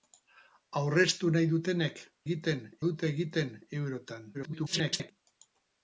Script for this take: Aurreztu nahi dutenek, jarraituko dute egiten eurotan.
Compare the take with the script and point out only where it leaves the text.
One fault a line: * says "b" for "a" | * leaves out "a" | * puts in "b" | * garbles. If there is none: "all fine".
* says "egiten" for "jarraituko"
* garbles